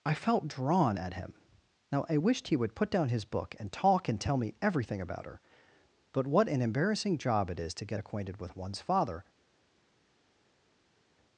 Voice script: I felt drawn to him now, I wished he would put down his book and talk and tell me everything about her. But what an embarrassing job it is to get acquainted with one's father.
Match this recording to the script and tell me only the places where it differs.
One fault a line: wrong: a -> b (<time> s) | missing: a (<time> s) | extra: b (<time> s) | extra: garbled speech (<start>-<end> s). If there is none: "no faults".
wrong: to -> at (1.0 s)